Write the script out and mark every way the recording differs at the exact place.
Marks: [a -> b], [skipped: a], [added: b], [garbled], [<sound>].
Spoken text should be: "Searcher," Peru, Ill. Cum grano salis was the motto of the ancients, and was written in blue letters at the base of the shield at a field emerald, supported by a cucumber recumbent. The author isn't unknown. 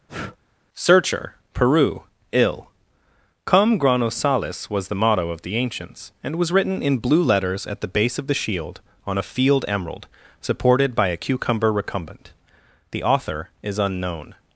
[breath] "Searcher," Peru, Ill. Cum grano salis was the motto of the ancients, and was written in blue letters at the base of the shield [at -> on] a field emerald, supported by a cucumber recumbent. The author [isn't -> is] unknown.